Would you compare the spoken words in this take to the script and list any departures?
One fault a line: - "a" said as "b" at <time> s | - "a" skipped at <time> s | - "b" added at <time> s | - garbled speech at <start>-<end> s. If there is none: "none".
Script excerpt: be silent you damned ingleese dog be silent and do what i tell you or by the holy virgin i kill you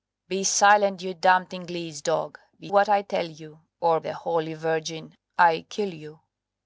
- "silent and do" skipped at 2.7 s
- "by" skipped at 4.0 s